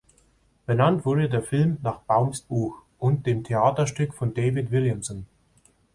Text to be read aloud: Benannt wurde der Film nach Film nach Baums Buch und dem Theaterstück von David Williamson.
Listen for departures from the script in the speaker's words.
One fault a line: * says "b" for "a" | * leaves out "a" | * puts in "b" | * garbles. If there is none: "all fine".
* leaves out "Film nach"